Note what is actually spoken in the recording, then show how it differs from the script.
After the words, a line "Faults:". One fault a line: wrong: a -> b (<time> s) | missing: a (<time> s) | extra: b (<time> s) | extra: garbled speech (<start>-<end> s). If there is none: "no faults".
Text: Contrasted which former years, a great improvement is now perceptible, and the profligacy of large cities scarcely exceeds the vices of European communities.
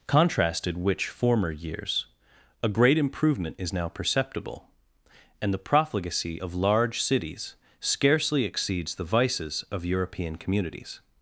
Contrasted which former years, a great improvement is now perceptible, and the profligacy of large cities scarcely exceeds the vices of European communities.
Faults:
no faults